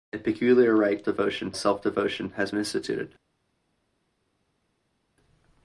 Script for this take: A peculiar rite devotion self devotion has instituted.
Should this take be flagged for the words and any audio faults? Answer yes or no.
no